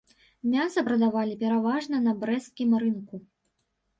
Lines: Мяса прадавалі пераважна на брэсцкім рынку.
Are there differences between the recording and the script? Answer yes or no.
no